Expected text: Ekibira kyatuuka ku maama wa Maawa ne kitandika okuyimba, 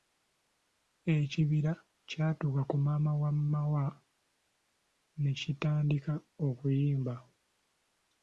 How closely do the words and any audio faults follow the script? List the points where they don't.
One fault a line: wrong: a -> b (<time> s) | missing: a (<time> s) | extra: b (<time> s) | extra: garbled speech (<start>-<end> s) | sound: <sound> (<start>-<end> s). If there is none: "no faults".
no faults